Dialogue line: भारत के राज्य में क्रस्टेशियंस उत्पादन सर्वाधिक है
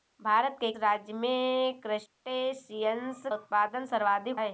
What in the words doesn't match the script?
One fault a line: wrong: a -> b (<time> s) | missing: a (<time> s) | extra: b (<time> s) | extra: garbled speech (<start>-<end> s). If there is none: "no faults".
no faults